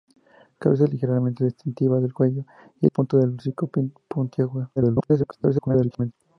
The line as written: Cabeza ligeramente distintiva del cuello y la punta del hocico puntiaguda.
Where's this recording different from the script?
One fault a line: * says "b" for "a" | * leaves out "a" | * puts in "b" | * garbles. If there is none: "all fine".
* leaves out "la"
* garbles